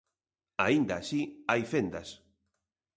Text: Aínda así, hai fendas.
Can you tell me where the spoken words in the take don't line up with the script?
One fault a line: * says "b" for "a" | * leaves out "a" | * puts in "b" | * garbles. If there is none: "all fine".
all fine